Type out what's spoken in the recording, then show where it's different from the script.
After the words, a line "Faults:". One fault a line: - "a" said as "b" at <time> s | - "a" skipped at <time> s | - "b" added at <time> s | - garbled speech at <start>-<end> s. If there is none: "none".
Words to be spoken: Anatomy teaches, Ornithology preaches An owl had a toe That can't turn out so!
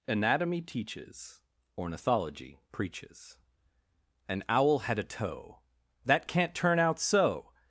Anatomy teaches, Ornithology preaches An owl had a toe That can't turn out so!
Faults:
none